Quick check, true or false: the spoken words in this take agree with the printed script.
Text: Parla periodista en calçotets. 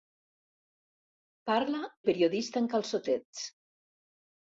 true